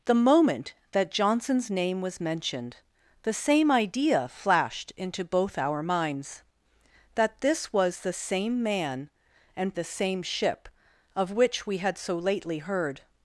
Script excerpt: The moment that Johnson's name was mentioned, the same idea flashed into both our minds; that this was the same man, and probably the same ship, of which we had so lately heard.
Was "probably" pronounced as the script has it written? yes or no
no